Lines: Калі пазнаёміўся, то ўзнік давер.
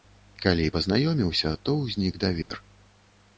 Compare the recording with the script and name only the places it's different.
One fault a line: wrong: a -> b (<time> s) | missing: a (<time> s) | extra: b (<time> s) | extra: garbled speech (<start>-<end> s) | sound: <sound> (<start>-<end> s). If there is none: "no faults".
sound: dropout (2.4-2.5 s)